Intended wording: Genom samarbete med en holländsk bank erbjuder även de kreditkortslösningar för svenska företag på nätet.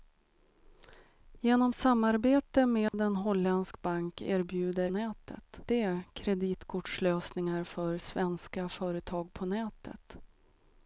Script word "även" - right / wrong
wrong